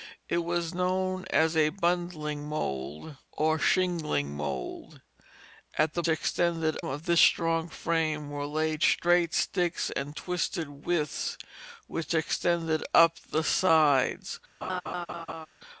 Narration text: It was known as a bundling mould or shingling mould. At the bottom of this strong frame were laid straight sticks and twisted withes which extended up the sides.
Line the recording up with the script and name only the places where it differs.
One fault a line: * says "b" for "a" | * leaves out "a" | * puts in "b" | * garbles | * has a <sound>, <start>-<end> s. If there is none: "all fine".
* says "extended" for "bottom"
* has a laugh, 14.6-15.5 s